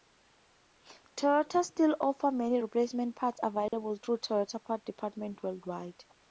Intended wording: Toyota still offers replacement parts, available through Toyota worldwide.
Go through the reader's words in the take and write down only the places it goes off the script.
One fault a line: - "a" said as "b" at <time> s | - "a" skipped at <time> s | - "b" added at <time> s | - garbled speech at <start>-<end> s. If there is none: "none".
- "many" added at 2.3 s
- "parts departments" added at 4.6 s